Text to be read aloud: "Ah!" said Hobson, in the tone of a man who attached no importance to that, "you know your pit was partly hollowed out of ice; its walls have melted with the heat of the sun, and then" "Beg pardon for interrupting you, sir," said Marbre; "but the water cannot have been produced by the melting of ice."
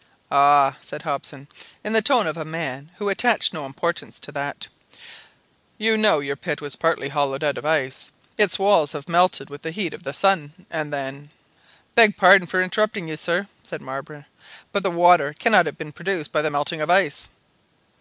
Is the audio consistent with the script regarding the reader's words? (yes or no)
yes